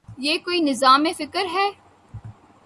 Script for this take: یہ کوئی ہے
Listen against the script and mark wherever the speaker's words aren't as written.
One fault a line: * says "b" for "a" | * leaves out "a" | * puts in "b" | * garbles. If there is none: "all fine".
* puts in "نظام فکر"